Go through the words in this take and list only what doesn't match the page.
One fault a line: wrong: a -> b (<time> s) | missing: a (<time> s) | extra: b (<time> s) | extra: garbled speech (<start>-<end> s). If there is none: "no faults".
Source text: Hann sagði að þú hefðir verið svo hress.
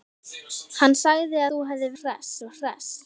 missing: að (1.4 s)
wrong: verið -> hress (2.0 s)